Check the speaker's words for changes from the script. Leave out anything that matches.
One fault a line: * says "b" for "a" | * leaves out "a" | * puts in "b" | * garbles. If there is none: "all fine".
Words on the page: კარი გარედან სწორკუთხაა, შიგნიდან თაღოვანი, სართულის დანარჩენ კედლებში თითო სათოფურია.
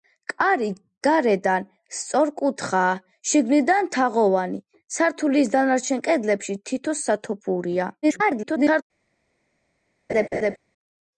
* garbles